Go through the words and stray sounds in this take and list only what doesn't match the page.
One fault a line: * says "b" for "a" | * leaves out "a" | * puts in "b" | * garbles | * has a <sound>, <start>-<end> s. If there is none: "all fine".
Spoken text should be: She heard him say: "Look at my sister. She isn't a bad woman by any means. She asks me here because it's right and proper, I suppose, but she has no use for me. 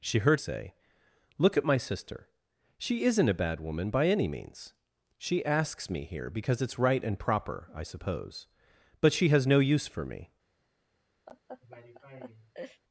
* leaves out "him"
* has a laugh, 11.3-12.8 s